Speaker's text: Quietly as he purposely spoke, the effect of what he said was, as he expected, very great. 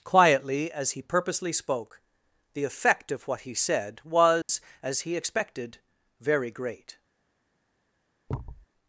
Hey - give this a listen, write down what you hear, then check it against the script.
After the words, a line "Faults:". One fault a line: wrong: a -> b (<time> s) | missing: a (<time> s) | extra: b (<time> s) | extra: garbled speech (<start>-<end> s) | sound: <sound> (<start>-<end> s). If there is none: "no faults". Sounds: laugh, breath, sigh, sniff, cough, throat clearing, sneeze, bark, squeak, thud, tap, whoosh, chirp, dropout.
Quietly as he purposely spoke, the effect of what he said was, as he expected, very great.
Faults:
sound: dropout (4.4-4.5 s)
sound: thud (8.3-8.7 s)